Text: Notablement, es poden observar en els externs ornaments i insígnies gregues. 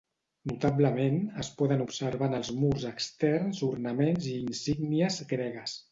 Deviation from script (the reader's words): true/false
true